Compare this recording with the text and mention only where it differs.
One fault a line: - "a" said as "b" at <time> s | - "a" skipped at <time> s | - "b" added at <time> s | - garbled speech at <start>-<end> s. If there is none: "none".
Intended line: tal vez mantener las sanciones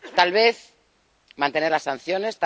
none